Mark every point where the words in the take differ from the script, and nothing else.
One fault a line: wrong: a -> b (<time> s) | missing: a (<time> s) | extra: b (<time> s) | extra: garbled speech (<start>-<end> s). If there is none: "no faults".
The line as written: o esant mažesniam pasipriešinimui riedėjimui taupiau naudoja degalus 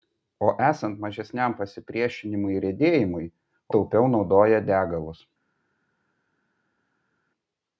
no faults